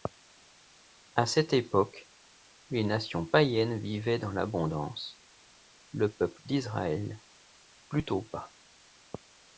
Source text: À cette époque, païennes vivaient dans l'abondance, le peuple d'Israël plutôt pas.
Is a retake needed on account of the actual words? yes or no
yes